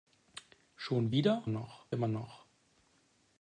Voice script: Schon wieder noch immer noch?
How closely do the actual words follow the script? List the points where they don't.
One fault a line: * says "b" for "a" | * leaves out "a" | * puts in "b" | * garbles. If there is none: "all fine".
all fine